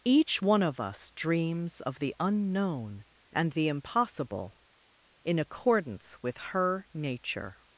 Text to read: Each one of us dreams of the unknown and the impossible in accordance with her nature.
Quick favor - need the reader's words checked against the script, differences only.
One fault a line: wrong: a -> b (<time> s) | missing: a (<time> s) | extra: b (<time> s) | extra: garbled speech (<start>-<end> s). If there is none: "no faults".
no faults